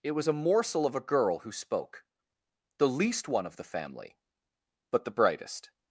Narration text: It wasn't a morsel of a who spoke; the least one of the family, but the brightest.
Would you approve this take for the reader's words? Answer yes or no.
no